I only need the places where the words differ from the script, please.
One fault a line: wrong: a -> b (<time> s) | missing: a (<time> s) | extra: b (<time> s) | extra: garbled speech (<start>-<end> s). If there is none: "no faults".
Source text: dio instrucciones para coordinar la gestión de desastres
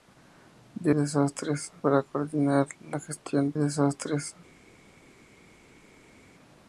wrong: instrucciones -> desastres (0.9 s)
missing: de (3.5 s)